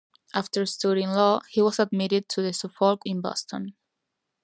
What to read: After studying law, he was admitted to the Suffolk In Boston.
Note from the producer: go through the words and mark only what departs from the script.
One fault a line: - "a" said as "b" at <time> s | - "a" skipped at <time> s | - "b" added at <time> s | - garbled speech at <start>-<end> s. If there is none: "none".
none